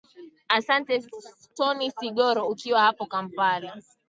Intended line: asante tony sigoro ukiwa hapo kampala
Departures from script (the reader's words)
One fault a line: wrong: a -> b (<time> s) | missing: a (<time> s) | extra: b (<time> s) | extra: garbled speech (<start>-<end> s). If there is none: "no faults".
no faults